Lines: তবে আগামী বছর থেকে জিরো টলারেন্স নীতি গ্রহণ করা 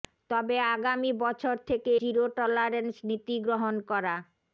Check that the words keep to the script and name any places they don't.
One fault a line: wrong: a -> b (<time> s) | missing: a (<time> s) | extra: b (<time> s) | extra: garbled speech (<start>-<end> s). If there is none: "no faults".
no faults